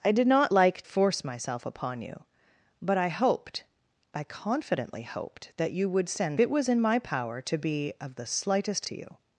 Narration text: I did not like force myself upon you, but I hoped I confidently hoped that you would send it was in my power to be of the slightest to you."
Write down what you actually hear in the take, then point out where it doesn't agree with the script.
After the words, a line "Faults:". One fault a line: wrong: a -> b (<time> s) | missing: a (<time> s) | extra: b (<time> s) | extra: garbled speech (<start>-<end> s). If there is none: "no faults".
I did not like force myself upon you, but I hoped I confidently hoped that you would send it was in my power to be of the slightest to you."
Faults:
no faults